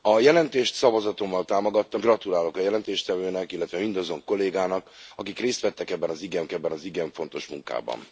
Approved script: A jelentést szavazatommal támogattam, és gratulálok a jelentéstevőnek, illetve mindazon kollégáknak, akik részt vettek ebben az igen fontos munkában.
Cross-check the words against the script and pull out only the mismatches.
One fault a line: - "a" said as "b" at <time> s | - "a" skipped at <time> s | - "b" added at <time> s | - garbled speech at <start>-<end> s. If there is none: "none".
- "és" skipped at 2.0 s
- "ebben az igen" added at 6.5 s